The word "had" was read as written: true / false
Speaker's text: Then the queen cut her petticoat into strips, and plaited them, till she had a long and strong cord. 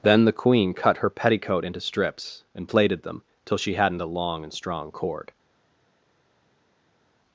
false